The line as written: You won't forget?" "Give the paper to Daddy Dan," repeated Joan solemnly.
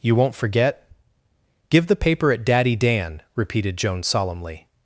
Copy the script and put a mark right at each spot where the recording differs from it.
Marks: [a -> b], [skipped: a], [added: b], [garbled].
You won't forget?" "Give the paper [to -> at] Daddy Dan," repeated Joan solemnly.